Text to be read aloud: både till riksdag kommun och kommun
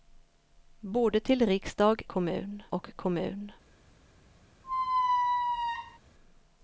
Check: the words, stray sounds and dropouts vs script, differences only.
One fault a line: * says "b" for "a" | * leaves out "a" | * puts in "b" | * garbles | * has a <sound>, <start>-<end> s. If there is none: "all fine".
* has a squeak, 4.6-6.0 s